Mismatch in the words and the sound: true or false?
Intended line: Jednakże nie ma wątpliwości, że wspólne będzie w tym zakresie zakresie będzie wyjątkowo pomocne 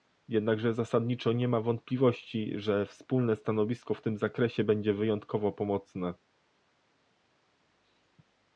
true